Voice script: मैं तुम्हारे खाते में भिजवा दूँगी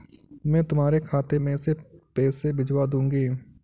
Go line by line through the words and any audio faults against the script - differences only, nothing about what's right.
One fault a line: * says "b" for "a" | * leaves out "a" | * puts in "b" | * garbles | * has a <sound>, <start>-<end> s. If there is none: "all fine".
* puts in "पैसे"